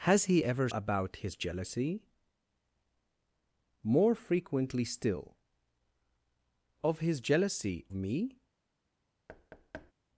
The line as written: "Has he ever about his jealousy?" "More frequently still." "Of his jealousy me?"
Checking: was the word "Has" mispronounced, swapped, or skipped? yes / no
no